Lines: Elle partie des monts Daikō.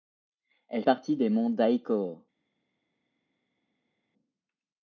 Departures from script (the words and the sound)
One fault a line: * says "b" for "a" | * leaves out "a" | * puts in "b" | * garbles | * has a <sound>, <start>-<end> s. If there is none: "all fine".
all fine